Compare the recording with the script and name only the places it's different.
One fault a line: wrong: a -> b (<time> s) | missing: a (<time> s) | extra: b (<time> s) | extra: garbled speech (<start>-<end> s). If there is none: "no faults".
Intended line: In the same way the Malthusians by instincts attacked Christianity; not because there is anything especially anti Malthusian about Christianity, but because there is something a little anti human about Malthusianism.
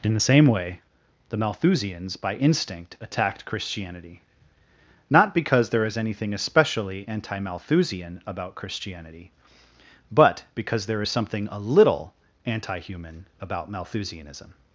wrong: instincts -> instinct (2.4 s)